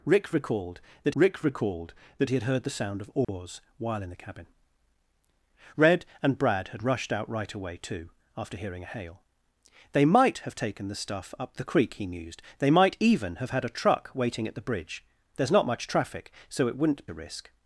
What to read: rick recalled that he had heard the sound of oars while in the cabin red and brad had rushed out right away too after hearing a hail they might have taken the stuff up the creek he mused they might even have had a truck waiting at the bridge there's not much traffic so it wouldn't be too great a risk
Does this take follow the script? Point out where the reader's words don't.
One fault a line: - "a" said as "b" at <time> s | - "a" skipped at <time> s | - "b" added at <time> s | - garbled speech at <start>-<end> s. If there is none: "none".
- "rick recalled that" added at 1.1 s
- "be too great" skipped at 17.1 s